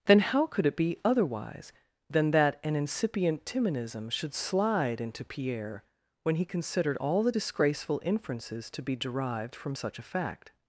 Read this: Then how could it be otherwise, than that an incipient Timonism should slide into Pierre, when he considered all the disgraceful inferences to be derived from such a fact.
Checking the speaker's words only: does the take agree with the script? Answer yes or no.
yes